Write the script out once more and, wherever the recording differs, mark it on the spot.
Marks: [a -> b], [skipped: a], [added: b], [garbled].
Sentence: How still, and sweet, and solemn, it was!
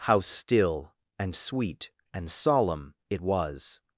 How still, and sweet, and solemn, it was!